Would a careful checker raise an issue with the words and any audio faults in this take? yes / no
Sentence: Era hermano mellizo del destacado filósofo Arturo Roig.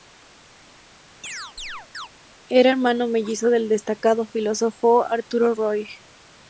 yes